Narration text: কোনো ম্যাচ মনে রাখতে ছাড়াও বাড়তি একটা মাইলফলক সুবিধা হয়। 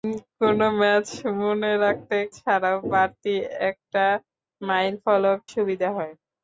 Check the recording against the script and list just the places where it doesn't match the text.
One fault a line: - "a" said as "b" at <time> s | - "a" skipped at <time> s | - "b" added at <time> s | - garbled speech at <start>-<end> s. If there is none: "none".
none